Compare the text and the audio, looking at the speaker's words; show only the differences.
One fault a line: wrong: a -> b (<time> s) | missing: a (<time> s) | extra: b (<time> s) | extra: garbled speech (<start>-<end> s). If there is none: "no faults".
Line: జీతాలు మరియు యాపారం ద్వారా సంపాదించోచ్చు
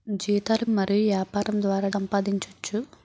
no faults